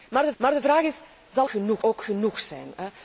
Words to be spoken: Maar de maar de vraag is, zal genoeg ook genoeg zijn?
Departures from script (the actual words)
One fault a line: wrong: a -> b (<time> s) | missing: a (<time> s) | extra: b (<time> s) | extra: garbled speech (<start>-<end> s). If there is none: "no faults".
no faults